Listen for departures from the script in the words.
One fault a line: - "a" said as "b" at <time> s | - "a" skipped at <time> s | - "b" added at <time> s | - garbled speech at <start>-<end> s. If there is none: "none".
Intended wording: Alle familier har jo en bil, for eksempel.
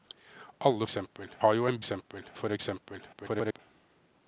- "familier" said as "eksempel" at 0.8 s
- "bil" said as "eksempel" at 1.8 s
- garbled speech at 3.1-3.6 s